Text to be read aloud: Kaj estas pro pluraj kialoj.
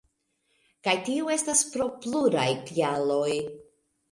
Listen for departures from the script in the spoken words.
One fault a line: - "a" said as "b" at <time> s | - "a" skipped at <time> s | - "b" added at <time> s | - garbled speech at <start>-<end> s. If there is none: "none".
- "tio" added at 1.1 s